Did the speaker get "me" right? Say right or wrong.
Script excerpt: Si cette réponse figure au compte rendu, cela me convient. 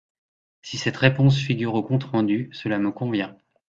right